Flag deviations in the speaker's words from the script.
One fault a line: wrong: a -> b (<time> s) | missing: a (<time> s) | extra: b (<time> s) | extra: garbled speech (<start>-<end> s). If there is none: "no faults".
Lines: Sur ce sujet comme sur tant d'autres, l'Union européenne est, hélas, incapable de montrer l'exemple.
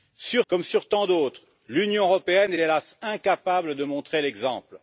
missing: ce sujet (0.5 s)
missing: est (2.5 s)